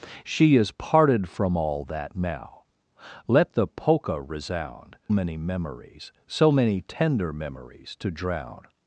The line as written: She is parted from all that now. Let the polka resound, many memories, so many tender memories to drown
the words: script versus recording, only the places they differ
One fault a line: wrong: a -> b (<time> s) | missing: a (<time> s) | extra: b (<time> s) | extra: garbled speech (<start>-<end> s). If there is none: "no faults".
no faults